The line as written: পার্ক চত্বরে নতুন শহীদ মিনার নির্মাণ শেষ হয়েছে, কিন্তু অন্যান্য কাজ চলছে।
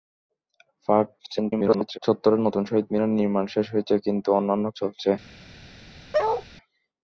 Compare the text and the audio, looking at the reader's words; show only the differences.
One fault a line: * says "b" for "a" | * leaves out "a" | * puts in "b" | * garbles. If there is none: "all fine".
* garbles
* leaves out "কাজ"